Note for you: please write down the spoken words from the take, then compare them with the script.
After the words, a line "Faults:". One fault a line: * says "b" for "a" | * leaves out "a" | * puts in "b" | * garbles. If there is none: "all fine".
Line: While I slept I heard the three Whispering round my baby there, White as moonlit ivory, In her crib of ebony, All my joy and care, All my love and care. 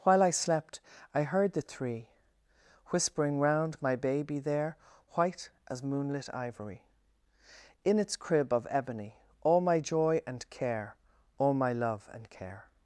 While I slept I heard the three Whispering round my baby there, White as moonlit ivory, In its crib of ebony, All my joy and care, All my love and care.
Faults:
* says "its" for "her"